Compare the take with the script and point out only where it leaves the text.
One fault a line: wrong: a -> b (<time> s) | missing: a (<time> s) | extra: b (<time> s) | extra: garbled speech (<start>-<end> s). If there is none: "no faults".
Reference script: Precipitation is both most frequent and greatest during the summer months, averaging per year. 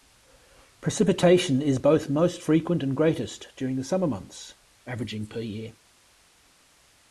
no faults